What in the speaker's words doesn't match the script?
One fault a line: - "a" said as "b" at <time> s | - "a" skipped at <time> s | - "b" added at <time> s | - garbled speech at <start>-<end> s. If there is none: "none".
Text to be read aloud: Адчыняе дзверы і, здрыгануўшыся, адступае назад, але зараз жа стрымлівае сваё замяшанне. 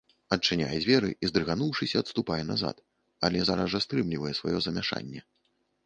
none